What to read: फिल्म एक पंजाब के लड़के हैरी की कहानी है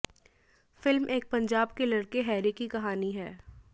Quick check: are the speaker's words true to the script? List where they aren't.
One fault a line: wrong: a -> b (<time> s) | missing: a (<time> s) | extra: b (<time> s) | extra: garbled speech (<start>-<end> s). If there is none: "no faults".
no faults